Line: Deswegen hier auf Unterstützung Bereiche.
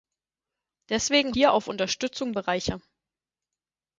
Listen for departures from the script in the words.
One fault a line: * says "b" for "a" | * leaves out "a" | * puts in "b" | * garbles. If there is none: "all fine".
all fine